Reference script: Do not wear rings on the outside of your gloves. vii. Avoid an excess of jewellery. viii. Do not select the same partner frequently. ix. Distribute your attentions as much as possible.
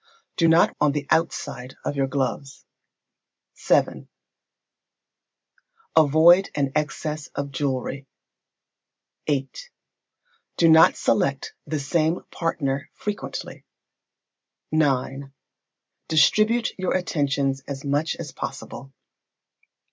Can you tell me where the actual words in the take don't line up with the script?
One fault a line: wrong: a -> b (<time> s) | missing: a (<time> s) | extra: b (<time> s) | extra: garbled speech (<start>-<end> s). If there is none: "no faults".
missing: wear rings (0.7 s)